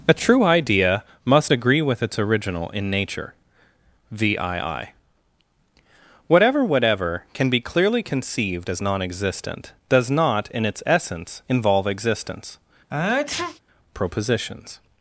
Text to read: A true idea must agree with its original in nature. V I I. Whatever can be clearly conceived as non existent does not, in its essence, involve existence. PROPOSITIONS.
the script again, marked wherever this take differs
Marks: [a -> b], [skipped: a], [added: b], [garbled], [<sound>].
A true idea must agree with its original in nature. V I I. Whatever [added: Whatever] can be clearly conceived as non existent does not, in its essence, involve existence. [sneeze] PROPOSITIONS.